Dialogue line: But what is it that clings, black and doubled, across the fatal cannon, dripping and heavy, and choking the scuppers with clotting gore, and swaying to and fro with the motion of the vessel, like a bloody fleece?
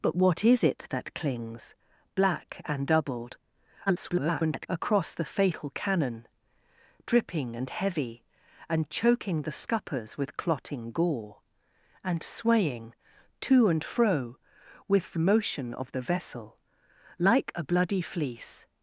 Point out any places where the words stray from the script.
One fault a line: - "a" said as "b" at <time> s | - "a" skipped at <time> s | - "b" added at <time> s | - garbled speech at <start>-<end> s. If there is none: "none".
- garbled speech at 3.9-4.7 s